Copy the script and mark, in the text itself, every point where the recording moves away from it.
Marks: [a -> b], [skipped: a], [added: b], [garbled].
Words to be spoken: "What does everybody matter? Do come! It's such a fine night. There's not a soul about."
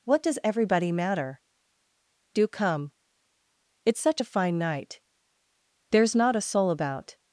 "What does everybody matter? Do come! It's such a fine night. There's not a soul about."